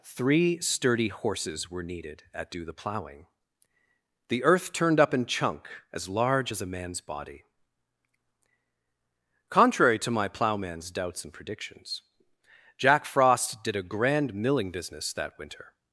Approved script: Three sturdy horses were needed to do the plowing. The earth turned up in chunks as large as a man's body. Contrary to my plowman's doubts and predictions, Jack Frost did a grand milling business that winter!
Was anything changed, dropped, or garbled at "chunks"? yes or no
yes